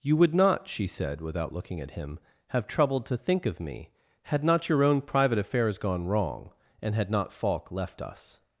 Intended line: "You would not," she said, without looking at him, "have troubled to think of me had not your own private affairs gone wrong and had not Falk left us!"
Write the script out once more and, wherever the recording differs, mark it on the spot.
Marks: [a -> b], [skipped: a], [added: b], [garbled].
"You would not," she said, without looking at him, "have troubled to think of me had not your own private affairs gone wrong and had not Falk left us!"